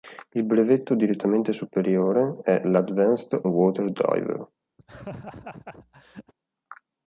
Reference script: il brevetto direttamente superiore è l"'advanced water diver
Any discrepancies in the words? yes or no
no